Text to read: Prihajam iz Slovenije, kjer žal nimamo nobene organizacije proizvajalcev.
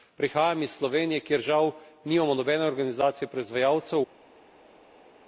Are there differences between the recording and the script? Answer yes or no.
no